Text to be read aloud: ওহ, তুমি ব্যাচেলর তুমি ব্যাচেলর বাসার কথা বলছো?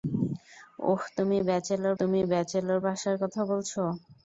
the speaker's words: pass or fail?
pass